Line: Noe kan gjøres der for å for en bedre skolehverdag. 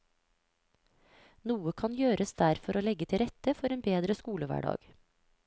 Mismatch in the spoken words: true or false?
true